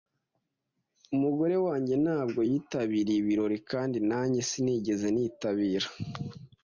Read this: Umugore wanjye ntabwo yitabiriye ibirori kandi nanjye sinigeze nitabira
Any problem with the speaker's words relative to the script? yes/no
no